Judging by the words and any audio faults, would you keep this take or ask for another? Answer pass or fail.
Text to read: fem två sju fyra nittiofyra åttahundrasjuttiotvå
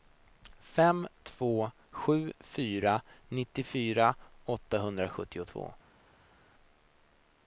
pass